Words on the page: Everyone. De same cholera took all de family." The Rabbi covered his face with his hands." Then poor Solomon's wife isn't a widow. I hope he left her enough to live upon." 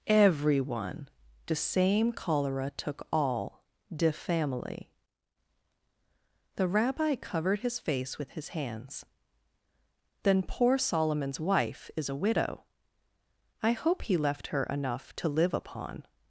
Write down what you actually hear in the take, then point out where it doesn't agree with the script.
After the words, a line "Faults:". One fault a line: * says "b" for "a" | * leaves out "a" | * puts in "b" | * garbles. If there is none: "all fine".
Everyone. De same cholera took all de family." The Rabbi covered his face with his hands." Then poor Solomon's wife is a widow. I hope he left her enough to live upon."
Faults:
* says "is" for "isn't"